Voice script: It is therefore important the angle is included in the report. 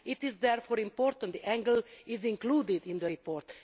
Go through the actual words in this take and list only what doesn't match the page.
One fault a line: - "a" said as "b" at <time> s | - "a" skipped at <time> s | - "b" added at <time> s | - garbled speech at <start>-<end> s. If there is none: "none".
none